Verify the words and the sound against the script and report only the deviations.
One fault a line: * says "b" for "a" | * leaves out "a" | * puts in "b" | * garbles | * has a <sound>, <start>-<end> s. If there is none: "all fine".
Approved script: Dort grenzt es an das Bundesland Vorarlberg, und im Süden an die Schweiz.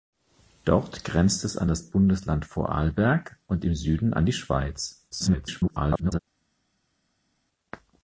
* garbles